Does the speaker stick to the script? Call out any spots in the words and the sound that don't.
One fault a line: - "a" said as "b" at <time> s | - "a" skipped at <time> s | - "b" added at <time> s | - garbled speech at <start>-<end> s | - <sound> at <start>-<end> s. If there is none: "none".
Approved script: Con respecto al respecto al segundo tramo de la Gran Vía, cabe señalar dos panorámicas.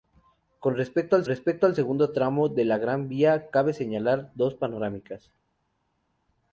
none